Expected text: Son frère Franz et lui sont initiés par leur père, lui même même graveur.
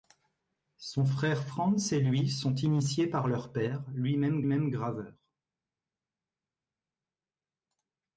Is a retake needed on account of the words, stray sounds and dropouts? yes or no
no